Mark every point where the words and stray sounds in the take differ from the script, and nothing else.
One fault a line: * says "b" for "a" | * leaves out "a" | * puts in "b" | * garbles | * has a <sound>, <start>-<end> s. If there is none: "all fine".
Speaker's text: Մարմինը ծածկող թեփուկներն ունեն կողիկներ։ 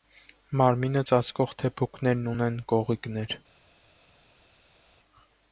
all fine